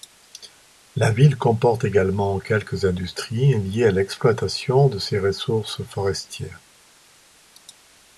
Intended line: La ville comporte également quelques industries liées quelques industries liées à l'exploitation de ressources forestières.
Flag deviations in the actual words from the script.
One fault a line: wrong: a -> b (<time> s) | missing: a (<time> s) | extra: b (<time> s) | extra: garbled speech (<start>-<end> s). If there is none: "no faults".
missing: quelques industries liées (3.9 s)
extra: ses (5.0 s)